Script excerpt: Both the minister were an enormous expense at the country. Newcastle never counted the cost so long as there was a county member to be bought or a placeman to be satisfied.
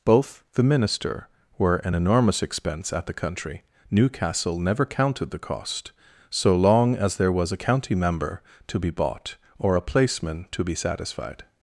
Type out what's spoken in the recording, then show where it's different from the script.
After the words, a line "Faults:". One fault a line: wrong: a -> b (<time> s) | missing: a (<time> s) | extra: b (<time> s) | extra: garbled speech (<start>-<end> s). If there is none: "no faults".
Both the minister were an enormous expense at the country. Newcastle never counted the cost so long as there was a county member to be bought or a placeman to be satisfied.
Faults:
no faults